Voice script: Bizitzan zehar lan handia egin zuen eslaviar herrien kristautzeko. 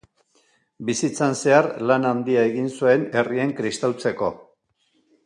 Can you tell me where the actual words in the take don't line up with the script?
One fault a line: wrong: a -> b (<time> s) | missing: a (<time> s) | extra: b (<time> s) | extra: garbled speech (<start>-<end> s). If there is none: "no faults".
missing: eslaviar (3.0 s)